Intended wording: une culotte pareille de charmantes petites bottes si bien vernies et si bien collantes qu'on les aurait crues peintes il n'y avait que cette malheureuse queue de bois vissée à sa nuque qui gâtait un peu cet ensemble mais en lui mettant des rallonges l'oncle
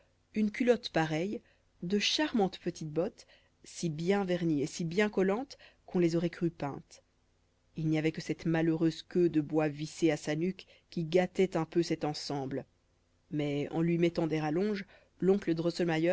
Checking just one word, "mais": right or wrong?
right